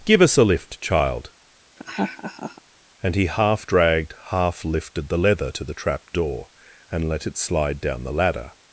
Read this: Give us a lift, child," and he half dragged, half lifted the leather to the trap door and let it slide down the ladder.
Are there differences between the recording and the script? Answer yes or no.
no